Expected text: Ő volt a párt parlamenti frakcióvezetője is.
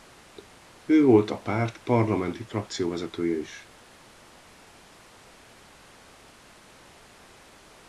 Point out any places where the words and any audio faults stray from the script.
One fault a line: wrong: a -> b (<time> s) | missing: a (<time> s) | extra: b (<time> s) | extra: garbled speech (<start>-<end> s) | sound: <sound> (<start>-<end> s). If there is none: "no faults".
no faults